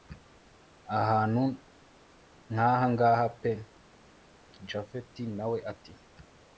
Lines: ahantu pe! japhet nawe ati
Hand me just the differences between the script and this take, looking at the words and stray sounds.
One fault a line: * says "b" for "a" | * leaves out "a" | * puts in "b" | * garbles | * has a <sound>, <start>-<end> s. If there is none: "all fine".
* puts in "nkahangaha"